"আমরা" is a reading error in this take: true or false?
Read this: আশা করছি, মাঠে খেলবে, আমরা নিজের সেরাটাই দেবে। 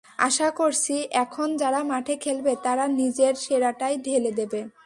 true